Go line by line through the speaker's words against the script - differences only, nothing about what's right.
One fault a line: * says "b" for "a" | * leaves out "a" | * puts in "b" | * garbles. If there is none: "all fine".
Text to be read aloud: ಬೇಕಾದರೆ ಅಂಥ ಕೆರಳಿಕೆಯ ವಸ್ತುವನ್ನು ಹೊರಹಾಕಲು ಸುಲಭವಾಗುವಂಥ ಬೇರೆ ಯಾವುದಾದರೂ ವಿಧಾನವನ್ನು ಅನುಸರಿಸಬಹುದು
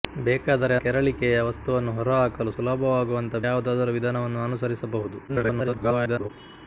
* leaves out "ಅಂಥ"
* leaves out "ಬೇರೆ"
* garbles